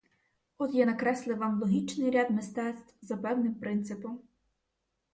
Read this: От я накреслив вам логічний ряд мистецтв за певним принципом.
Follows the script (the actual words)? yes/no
yes